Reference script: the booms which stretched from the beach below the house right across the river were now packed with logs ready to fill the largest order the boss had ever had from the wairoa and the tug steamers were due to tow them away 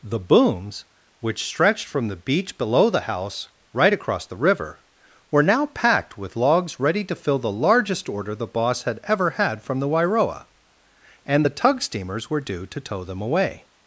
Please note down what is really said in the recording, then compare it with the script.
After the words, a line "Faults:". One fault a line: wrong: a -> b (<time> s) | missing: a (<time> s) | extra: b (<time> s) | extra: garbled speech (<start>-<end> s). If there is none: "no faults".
the booms which stretched from the beach below the house right across the river were now packed with logs ready to fill the largest order the boss had ever had from the wairoa and the tug steamers were due to tow them away
Faults:
no faults